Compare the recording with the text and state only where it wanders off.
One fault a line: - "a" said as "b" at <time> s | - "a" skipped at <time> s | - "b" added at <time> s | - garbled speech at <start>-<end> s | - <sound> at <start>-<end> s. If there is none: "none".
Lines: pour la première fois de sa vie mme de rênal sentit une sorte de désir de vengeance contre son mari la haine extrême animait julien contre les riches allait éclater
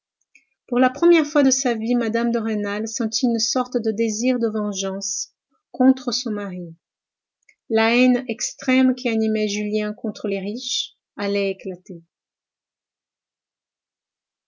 - "qui" added at 8.9 s